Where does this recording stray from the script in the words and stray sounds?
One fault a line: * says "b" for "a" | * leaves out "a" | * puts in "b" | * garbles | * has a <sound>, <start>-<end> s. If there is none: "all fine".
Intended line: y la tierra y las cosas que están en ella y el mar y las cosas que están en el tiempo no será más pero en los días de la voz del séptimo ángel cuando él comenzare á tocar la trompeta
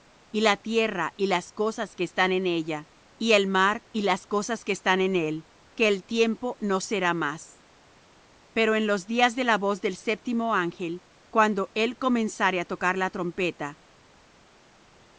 * puts in "él que"